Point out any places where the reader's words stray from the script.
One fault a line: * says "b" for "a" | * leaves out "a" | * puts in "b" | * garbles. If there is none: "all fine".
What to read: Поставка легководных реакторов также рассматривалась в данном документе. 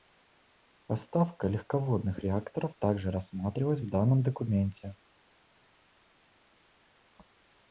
all fine